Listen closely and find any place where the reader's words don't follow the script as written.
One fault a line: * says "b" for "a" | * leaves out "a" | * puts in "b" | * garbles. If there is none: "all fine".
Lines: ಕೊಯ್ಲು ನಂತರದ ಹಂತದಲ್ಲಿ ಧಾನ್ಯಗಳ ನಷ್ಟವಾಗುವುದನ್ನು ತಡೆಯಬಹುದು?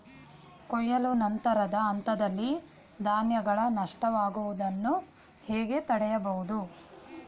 * puts in "ಹೇಗೆ"